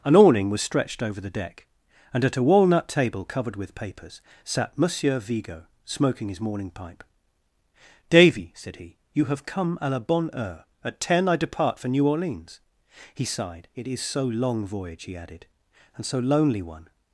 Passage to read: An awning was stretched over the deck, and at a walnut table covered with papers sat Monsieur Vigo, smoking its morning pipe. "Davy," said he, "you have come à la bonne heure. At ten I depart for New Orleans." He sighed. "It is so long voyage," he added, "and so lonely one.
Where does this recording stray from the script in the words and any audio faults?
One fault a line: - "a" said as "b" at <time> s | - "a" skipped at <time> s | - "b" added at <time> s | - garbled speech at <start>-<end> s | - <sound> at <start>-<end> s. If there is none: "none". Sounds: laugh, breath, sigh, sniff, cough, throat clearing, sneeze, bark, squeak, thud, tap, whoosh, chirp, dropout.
- "its" said as "his" at 6.3 s